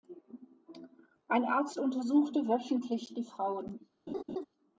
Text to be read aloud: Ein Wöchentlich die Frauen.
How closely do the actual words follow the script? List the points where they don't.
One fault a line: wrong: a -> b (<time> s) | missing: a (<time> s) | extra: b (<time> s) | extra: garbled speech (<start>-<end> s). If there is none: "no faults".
extra: Arzt untersuchte (1.4 s)